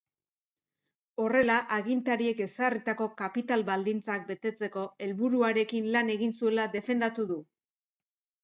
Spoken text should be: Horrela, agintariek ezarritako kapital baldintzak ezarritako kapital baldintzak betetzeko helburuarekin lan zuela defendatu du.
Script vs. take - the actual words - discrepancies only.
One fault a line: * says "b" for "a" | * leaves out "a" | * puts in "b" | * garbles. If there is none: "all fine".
* leaves out "ezarritako kapital baldintzak"
* puts in "egin"